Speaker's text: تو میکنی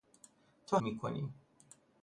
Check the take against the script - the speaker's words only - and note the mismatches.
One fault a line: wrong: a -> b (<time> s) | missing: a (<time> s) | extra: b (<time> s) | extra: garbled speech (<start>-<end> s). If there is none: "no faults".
no faults